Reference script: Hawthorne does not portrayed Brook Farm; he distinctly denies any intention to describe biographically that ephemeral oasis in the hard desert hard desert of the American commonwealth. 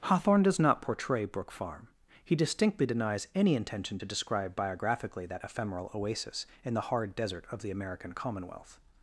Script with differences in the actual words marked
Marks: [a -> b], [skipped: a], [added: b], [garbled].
Hawthorne does not [portrayed -> portray] Brook Farm; he distinctly denies any intention to describe biographically that ephemeral oasis in the hard desert [skipped: hard desert] of the American commonwealth.